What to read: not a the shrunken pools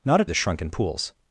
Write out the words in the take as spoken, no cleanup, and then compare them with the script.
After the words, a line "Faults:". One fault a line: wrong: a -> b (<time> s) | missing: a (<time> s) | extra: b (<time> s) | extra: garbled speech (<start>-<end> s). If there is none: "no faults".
not a the shrunken pools
Faults:
no faults